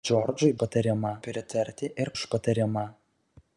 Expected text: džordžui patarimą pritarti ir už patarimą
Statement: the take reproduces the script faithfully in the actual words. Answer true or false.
true